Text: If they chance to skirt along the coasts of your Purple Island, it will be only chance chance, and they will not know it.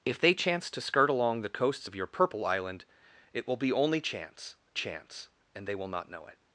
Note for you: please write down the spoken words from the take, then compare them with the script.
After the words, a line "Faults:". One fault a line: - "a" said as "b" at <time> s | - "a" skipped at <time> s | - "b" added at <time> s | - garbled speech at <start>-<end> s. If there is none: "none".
If they chance to skirt along the coasts of your Purple Island, it will be only chance chance, and they will not know it.
Faults:
none